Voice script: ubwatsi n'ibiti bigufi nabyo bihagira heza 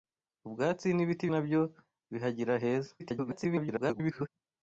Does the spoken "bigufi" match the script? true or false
false